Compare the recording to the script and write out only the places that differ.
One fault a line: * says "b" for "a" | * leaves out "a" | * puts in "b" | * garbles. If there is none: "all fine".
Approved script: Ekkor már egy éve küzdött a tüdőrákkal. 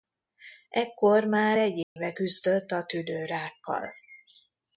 all fine